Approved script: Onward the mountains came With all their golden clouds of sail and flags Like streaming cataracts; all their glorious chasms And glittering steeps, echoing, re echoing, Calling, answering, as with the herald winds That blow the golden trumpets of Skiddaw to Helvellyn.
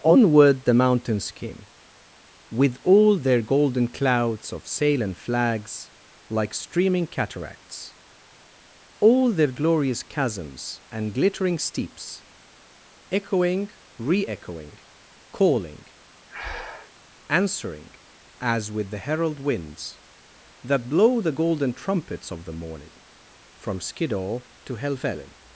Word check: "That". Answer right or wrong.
right